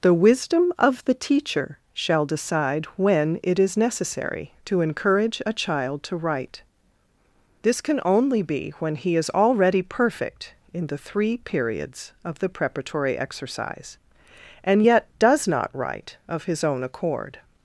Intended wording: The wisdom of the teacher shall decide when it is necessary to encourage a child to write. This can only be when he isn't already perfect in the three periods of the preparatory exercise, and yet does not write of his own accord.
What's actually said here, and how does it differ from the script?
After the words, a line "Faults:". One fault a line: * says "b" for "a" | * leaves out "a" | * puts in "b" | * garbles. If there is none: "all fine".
The wisdom of the teacher shall decide when it is necessary to encourage a child to write. This can only be when he is already perfect in the three periods of the preparatory exercise, and yet does not write of his own accord.
Faults:
* says "is" for "isn't"